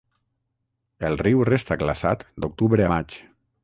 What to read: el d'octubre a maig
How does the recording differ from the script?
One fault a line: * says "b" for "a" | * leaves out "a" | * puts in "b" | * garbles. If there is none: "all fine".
* puts in "riu resta glaçat"